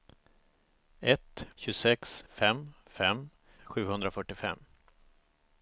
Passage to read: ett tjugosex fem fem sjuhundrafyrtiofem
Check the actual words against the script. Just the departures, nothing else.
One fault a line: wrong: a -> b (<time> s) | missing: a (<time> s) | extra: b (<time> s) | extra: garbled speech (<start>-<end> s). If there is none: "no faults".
no faults